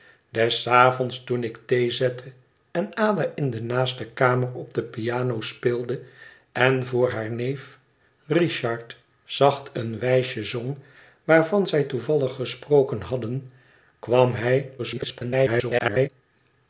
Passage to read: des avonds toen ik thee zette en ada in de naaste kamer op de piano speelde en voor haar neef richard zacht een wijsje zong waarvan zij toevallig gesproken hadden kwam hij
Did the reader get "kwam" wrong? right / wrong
right